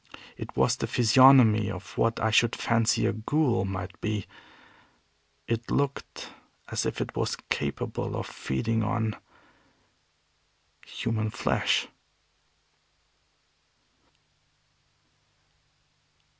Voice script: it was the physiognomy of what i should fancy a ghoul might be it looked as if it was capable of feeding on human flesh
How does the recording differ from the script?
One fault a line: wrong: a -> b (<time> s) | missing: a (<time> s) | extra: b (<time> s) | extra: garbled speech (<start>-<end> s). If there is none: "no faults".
no faults